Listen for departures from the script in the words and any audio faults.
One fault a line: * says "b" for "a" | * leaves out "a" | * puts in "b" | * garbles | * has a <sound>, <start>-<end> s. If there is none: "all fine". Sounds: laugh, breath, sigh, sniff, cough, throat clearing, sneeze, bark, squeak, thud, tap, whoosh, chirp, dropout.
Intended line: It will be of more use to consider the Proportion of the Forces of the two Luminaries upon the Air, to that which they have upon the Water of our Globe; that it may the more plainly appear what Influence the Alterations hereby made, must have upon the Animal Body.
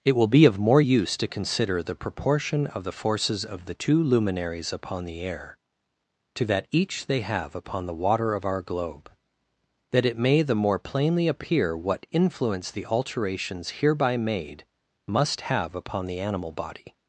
* says "each" for "which"